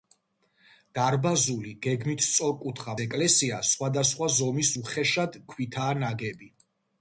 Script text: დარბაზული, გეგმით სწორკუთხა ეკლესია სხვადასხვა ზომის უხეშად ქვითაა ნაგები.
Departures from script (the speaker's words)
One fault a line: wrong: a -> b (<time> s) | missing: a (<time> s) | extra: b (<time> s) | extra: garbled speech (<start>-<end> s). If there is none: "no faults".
no faults